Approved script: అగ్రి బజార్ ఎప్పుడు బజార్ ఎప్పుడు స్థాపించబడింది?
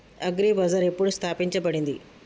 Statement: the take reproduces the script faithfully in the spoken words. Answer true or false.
false